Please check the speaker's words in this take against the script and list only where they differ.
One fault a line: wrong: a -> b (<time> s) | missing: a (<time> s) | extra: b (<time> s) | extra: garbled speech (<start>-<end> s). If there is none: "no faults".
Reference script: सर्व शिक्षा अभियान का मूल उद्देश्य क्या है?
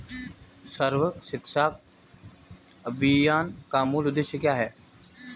no faults